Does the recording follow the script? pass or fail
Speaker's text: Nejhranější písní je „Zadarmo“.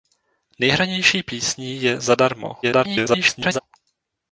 fail